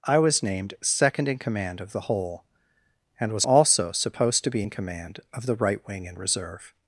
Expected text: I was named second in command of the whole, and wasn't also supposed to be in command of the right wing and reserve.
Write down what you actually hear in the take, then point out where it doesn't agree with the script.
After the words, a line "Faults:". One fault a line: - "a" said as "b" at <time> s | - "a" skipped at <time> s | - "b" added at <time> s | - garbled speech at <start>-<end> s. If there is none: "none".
I was named second in command of the whole, and was also supposed to be in command of the right wing and reserve.
Faults:
- "wasn't" said as "was" at 3.3 s